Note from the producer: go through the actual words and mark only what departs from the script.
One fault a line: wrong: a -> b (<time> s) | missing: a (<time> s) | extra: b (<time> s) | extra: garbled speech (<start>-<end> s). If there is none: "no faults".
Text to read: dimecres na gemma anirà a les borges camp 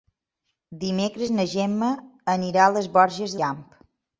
no faults